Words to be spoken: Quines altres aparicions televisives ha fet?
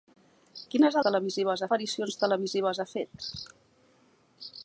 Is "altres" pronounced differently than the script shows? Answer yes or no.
yes